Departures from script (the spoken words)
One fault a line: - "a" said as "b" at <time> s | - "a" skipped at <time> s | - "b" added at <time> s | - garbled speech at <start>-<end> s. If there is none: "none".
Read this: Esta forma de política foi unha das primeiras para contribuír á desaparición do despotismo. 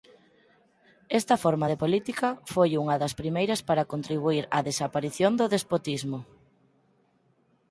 none